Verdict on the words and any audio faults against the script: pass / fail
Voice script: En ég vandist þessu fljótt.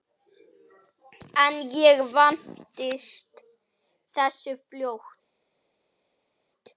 pass